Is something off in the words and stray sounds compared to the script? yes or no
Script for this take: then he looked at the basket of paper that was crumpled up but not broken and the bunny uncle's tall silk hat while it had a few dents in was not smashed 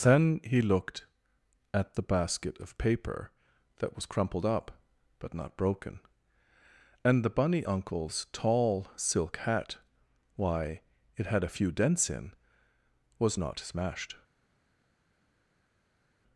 yes